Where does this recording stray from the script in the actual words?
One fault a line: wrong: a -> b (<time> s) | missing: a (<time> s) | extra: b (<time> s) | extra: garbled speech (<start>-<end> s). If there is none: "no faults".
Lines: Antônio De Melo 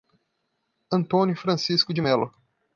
extra: Francisco (1.4 s)